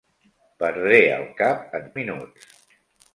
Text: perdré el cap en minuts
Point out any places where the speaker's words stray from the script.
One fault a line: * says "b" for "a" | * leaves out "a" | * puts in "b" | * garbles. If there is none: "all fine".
all fine